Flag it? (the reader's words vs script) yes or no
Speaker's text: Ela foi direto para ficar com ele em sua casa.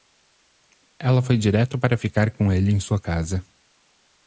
no